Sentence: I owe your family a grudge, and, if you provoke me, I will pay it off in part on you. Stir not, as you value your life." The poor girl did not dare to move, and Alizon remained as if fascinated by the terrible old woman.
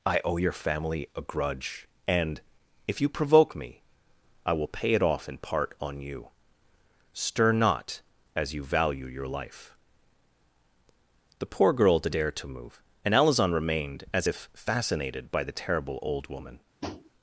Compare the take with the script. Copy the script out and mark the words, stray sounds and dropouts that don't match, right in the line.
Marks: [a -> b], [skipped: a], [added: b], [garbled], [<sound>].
I owe your family a grudge, and, if you provoke me, I will pay it off in part on you. Stir not, as you value your life." The poor girl did [skipped: not] dare to move, and Alizon remained as if fascinated by the terrible old woman. [tap]